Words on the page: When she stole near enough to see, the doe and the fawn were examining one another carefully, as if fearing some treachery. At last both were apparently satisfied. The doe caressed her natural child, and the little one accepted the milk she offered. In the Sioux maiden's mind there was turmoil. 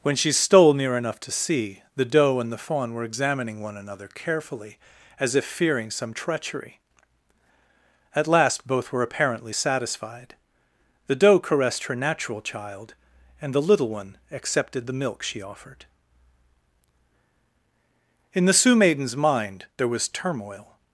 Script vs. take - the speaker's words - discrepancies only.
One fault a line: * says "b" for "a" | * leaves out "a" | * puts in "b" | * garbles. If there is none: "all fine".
all fine